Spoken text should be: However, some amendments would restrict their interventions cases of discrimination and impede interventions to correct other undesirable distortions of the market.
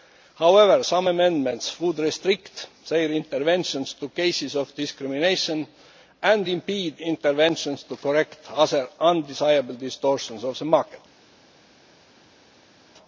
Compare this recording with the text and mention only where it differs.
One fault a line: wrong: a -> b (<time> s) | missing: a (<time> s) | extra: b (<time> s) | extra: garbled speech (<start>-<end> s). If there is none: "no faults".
extra: to (3.9 s)